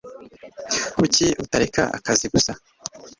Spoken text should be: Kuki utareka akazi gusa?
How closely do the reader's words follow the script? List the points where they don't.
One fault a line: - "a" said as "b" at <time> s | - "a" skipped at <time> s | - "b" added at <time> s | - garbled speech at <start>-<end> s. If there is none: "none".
none